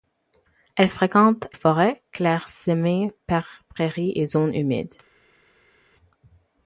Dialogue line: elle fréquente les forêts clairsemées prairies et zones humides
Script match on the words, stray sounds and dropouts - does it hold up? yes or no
no